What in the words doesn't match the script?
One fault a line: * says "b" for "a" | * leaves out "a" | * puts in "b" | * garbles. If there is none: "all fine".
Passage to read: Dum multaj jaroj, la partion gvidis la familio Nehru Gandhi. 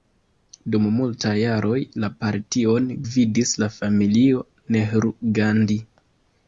all fine